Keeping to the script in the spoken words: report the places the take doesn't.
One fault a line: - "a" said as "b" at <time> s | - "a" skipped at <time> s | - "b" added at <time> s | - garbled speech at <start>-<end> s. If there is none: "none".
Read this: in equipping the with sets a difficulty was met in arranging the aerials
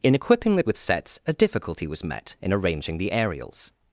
none